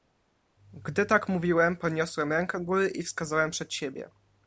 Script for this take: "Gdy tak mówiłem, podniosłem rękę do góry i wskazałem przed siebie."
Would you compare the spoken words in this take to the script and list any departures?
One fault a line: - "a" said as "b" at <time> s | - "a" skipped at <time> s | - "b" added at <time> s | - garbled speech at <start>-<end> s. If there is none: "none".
- "do" skipped at 2.6 s